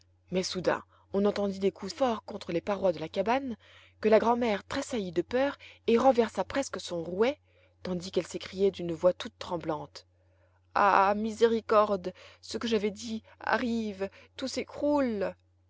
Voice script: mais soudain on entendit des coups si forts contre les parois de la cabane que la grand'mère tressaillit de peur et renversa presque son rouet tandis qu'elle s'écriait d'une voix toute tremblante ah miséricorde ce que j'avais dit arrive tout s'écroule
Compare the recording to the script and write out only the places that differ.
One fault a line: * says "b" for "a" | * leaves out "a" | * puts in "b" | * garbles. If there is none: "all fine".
* leaves out "si"